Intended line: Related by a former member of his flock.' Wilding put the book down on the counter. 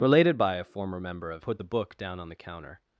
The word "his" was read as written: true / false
false